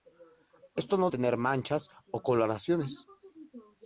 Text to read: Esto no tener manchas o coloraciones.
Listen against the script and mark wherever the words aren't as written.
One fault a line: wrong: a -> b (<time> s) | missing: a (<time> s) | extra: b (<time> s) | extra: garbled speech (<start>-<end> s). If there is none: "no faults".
no faults